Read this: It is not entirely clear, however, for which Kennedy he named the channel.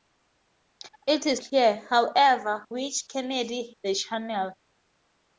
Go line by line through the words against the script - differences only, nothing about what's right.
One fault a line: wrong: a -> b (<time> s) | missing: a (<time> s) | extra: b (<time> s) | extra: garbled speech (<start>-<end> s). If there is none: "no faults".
missing: not entirely (1.4 s)
missing: for (2.6 s)
missing: he named (3.7 s)